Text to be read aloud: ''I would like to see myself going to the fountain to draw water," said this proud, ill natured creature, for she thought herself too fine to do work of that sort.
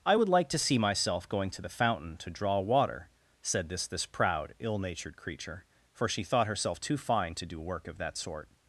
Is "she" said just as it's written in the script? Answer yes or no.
yes